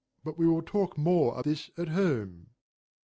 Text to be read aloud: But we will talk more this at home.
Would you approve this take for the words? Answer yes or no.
yes